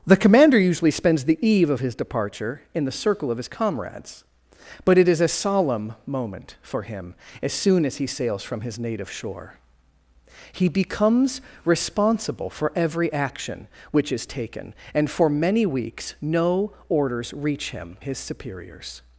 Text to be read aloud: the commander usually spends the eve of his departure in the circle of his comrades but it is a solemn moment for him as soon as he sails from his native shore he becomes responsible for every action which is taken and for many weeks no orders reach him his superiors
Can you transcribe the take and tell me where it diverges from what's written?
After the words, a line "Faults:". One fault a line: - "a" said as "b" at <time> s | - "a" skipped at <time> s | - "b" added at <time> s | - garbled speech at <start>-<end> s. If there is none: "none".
the commander usually spends the eve of his departure in the circle of his comrades but it is a solemn moment for him as soon as he sails from his native shore he becomes responsible for every action which is taken and for many weeks no orders reach him his superiors
Faults:
none